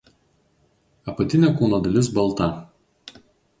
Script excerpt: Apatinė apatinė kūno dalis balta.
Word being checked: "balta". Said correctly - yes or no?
yes